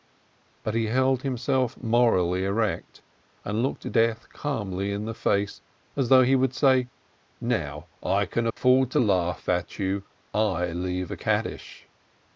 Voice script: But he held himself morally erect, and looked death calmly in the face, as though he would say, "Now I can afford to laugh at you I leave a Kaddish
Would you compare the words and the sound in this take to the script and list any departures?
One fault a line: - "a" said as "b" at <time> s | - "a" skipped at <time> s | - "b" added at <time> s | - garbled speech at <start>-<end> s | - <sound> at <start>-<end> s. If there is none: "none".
- dropout at 8.5-8.6 s